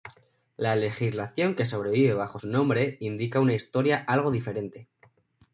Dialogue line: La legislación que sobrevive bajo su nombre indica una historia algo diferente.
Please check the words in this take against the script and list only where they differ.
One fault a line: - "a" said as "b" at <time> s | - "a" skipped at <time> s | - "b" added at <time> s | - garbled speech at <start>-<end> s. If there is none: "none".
none